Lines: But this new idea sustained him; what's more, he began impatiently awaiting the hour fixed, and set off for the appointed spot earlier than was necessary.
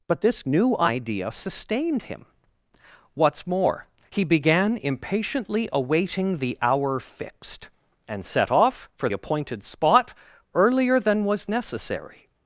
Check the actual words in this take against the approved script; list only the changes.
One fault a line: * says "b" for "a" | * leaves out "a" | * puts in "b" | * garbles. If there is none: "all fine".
* leaves out "the"